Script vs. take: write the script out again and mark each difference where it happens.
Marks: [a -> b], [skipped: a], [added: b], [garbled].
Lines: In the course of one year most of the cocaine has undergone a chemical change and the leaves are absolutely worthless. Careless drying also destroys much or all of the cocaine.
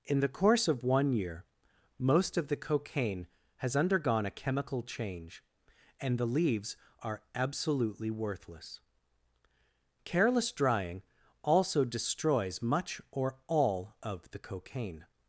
In the course of one year most of the cocaine has undergone a chemical change and the leaves are absolutely worthless. Careless drying also destroys much or all of the cocaine.